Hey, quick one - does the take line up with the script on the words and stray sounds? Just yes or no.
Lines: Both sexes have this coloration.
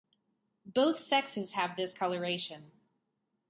yes